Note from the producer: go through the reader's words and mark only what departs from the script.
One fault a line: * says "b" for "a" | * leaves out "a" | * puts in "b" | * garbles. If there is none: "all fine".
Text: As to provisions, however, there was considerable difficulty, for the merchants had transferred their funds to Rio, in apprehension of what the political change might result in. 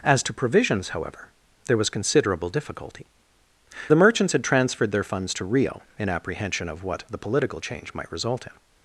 * leaves out "for"